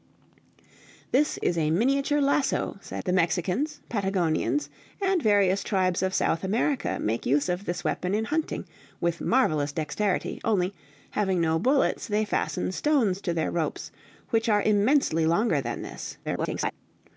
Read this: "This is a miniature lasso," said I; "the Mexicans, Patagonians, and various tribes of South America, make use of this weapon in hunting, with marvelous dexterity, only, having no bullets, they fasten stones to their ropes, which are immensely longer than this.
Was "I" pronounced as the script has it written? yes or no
no